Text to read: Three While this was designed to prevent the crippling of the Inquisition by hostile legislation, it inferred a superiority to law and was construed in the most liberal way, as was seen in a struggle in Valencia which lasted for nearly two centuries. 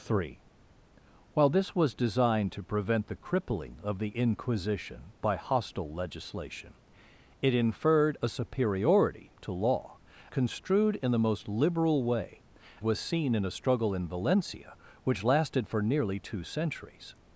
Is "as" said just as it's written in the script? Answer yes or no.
no